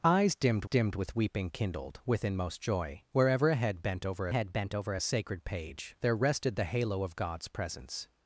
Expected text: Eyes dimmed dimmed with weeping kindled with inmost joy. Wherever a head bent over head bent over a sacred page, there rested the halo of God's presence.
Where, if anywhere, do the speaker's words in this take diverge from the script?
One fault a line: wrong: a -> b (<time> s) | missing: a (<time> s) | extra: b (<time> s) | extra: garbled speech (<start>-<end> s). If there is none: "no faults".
no faults